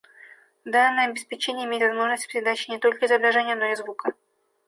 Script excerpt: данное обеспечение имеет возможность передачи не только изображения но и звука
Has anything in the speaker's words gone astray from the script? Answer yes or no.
no